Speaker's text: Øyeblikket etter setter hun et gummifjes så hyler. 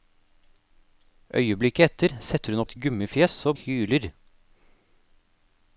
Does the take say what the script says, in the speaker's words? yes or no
yes